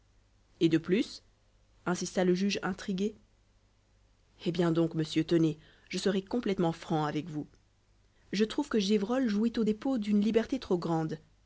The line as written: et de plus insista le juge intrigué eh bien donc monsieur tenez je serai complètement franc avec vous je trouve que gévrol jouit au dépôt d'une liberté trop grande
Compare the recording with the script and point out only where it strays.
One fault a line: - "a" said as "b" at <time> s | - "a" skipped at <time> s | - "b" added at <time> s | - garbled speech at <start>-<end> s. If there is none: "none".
none